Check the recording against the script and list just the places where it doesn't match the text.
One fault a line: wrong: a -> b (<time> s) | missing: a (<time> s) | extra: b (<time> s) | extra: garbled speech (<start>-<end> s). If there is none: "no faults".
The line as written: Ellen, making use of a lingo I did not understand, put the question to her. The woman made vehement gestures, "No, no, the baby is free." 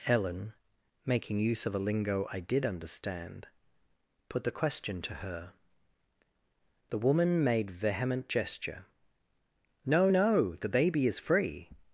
missing: not (2.6 s)
wrong: gestures -> gesture (8.3 s)